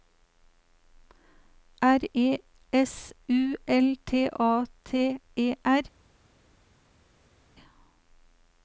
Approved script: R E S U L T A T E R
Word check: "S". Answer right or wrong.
right